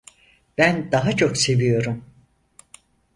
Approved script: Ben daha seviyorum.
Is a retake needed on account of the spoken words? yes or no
yes